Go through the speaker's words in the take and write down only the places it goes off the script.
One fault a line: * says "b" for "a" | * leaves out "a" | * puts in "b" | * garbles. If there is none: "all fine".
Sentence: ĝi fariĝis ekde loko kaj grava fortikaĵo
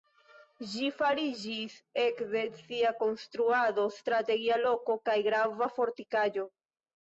* puts in "sia konstruado strategia"